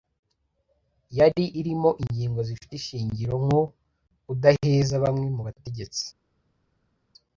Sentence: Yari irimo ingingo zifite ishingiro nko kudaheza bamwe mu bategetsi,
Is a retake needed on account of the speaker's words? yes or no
no